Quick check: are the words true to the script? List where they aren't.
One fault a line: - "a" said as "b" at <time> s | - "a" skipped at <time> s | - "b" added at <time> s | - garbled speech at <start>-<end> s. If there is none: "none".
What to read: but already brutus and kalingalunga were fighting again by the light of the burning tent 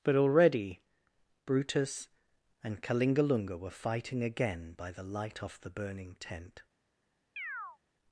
- "of" said as "off" at 5.4 s